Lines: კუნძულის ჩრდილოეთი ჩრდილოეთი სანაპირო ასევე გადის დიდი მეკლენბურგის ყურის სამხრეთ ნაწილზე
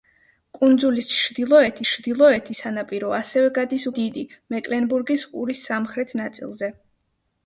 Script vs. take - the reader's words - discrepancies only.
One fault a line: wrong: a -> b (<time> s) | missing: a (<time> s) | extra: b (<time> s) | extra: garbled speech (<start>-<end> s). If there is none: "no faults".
no faults